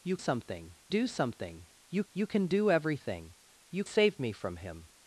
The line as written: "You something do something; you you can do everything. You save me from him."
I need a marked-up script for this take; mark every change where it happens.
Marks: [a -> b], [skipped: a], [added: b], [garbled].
"You something do something; you you can do everything. You save me from him."